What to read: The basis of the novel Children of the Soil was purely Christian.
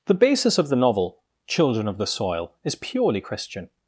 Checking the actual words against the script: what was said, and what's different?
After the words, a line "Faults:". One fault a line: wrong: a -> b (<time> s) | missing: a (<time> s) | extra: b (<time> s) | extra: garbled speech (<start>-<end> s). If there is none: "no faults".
The basis of the novel Children of the Soil is purely Christian.
Faults:
wrong: was -> is (2.6 s)